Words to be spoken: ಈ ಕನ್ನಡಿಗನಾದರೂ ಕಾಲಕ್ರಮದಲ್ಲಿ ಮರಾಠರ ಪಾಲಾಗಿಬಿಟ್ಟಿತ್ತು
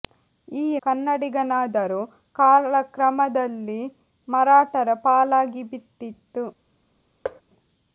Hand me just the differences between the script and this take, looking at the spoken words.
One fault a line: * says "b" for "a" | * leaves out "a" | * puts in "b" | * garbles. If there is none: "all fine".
all fine